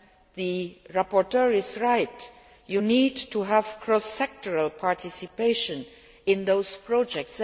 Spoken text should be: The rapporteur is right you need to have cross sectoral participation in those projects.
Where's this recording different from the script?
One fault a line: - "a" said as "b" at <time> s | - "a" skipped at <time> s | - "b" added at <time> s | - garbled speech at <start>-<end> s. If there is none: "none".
none